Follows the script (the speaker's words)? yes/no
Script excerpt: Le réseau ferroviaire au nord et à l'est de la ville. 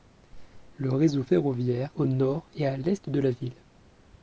yes